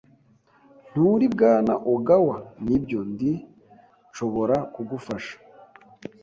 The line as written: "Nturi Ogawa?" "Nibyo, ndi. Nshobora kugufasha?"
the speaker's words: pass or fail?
fail